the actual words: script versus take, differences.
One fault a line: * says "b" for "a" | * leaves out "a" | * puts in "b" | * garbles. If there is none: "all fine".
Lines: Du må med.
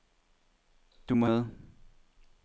all fine